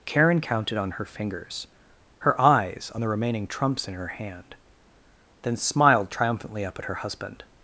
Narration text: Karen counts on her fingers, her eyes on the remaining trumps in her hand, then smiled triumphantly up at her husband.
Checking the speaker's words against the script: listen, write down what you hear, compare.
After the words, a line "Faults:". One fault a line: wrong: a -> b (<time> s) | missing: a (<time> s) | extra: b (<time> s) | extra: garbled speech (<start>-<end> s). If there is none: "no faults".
Karen counted on her fingers, her eyes on the remaining trumps in her hand, then smiled triumphantly up at her husband.
Faults:
wrong: counts -> counted (0.4 s)